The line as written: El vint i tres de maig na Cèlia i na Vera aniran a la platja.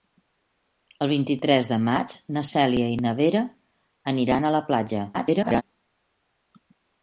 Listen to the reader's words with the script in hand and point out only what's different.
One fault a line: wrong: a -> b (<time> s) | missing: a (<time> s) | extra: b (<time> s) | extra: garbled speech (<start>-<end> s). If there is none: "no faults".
extra: garbled speech (5.1-5.6 s)